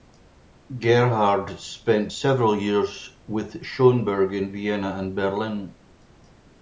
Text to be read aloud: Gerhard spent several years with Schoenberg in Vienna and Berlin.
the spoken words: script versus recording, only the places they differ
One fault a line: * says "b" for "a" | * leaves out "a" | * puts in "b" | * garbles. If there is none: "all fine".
all fine